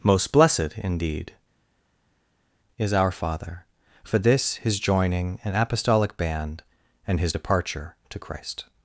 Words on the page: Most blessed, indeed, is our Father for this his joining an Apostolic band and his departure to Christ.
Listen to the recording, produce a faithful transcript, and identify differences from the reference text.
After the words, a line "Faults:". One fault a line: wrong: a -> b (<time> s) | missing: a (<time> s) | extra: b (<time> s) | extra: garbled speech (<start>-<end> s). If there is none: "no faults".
Most blessed, indeed, is our Father for this his joining an Apostolic band and his departure to Christ.
Faults:
no faults